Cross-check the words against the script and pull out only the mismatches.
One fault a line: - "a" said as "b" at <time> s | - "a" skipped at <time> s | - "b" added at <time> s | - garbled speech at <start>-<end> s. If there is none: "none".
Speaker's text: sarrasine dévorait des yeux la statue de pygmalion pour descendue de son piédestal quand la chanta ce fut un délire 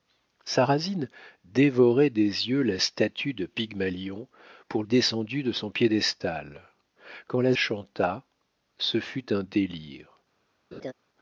none